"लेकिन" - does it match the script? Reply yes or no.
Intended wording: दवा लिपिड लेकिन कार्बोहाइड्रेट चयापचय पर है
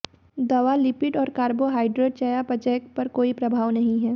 no